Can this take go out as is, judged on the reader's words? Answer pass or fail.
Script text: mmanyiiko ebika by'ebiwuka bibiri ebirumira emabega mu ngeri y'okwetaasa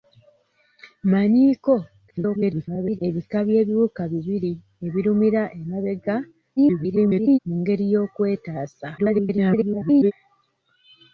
fail